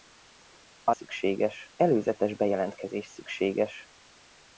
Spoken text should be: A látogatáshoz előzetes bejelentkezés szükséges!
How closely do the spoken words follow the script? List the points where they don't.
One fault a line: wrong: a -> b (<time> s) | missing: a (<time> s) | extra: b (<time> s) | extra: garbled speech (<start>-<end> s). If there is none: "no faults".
wrong: látogatáshoz -> szükséges (0.9 s)